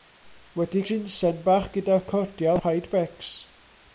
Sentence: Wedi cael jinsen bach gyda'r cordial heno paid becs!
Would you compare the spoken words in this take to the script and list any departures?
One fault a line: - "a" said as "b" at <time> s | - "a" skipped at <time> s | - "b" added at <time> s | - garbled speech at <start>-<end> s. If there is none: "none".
- "cael" skipped at 0.8 s
- "heno" skipped at 2.6 s